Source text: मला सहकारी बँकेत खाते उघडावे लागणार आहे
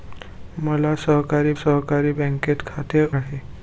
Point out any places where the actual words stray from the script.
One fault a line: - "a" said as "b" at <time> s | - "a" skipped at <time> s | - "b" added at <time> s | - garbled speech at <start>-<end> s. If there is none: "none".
- "सहकारी" added at 1.6 s
- "उघडावे लागणार" skipped at 3.1 s